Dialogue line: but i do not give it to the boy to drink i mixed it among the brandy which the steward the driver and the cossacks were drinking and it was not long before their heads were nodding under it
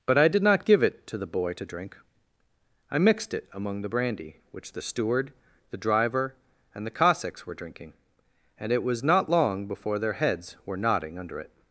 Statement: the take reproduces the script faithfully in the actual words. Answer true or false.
false